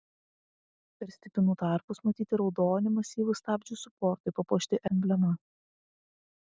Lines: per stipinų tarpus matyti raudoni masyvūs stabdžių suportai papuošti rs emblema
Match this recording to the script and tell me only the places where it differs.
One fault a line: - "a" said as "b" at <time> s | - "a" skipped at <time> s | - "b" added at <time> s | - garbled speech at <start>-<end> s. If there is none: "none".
- "rs" skipped at 4.8 s